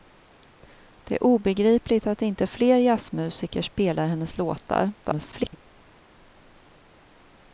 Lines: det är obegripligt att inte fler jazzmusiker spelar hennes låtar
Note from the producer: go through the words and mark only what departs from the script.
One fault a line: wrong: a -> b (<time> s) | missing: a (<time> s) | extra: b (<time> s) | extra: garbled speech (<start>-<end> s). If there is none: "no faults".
extra: garbled speech (5.0-5.6 s)